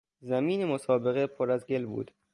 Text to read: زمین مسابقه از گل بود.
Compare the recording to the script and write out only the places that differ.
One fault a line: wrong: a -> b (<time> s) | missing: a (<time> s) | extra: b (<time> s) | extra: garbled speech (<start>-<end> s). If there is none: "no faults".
extra: پر (1.3 s)